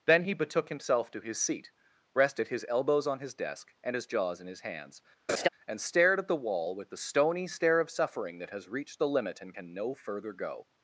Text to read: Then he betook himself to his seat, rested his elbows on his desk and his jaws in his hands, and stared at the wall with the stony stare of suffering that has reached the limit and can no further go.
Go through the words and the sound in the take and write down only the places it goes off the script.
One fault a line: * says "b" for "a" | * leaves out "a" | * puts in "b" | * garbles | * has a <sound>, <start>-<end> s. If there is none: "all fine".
* has a laugh, 5.3-5.5 s